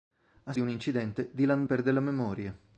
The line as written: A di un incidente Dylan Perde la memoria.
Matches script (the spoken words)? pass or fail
pass